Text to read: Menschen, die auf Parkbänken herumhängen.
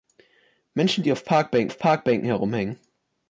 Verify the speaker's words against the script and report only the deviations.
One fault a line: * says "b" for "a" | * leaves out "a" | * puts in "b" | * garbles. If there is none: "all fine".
* puts in "auf Parkbänken"